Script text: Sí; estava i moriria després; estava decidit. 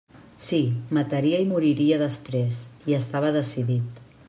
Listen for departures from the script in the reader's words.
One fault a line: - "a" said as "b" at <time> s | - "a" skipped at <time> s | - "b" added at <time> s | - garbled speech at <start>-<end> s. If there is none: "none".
- "estava" said as "mataria" at 1.0 s
- "hi" added at 2.9 s